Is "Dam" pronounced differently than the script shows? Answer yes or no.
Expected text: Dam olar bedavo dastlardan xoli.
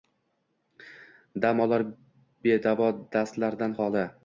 no